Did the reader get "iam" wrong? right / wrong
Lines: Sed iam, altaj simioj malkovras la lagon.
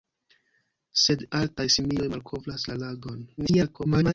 wrong